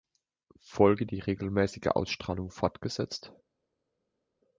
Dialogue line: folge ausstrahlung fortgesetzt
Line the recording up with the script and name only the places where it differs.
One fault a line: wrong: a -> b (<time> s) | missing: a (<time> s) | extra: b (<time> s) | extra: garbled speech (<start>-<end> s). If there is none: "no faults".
extra: die regelmäßige (1.1 s)